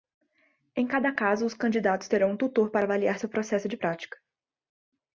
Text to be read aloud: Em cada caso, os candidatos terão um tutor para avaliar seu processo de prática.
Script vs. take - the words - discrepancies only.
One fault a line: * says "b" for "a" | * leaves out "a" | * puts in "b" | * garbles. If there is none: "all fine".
all fine